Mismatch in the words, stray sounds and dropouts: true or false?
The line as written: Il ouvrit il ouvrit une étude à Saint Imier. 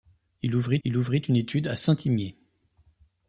false